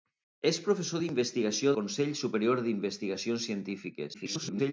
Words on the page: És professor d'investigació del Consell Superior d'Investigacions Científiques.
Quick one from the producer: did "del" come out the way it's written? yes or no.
no